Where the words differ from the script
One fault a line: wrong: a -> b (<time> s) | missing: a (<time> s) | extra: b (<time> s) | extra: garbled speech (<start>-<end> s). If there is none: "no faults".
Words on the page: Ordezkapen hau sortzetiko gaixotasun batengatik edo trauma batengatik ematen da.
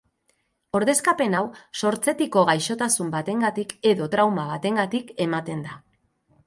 no faults